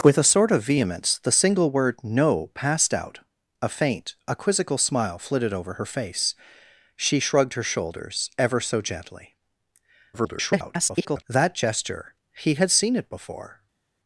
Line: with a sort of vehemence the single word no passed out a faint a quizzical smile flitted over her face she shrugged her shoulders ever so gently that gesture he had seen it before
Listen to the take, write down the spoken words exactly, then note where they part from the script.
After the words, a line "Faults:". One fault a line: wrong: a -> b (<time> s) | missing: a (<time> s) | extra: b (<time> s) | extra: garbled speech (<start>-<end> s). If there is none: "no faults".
with a sort of vehemence the single word no passed out a faint a quizzical smile flitted over her face she shrugged her shoulders ever so gently [garbled] that gesture he had seen it before
Faults:
extra: garbled speech (10.1-11.2 s)